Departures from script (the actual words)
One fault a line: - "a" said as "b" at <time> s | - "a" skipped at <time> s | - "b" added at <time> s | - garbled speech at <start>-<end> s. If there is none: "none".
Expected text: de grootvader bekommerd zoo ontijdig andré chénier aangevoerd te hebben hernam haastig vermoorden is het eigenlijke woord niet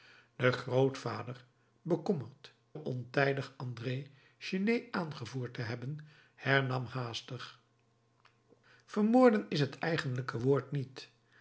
- "zoo" skipped at 2.5 s